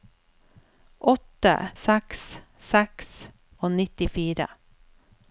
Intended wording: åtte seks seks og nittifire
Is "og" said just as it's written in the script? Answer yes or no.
yes